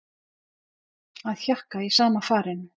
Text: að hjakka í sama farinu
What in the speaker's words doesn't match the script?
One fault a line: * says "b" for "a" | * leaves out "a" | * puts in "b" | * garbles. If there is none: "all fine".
all fine